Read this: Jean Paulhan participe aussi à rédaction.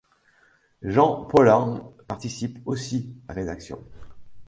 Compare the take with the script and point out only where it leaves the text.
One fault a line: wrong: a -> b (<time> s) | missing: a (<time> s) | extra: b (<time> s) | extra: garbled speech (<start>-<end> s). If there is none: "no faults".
no faults